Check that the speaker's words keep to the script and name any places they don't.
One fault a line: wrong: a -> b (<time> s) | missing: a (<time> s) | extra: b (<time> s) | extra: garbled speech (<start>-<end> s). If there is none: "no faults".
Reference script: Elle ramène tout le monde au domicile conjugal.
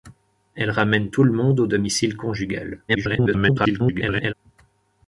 extra: garbled speech (2.9-4.3 s)